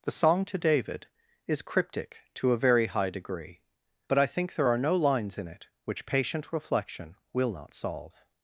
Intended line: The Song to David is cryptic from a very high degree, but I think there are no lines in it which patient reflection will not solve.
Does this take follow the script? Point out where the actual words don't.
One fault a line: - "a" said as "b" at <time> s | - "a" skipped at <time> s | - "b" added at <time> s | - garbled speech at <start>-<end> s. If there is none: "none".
- "from" said as "to" at 2.3 s